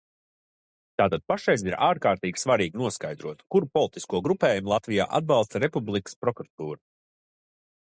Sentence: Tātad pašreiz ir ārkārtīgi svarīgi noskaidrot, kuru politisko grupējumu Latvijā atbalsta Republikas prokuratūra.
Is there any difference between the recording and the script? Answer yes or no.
no